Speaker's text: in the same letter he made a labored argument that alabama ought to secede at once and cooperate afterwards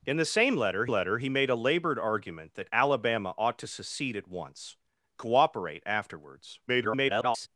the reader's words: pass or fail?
fail